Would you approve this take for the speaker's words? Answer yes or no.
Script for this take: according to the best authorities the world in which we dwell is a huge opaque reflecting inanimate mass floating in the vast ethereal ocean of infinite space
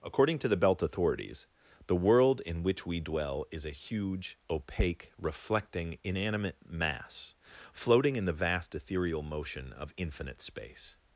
no